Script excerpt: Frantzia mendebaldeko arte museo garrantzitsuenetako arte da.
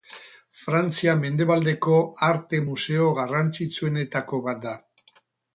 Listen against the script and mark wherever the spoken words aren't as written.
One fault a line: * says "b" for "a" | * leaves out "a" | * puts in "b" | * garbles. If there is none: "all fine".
* says "bat" for "arte"